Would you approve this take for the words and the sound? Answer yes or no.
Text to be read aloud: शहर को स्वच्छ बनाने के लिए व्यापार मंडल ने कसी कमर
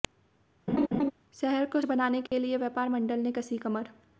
no